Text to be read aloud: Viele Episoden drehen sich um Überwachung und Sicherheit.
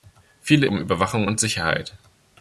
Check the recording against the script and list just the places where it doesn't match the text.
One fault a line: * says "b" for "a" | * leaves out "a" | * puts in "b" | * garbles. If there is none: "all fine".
* leaves out "Episoden drehen sich"